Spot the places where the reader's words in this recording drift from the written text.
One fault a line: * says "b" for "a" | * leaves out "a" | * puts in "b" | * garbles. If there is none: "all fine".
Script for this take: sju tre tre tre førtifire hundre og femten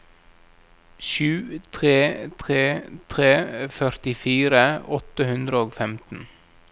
* puts in "åtte"